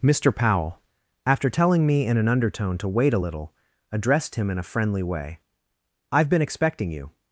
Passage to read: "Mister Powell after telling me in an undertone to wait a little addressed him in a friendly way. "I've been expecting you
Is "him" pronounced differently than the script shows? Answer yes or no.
no